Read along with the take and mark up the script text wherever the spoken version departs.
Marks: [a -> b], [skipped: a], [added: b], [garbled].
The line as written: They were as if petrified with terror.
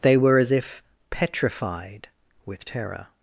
They were as if petrified with terror.